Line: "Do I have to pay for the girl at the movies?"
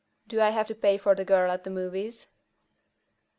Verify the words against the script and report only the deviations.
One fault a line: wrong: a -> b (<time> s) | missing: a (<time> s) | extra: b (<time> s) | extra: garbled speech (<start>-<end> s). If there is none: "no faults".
no faults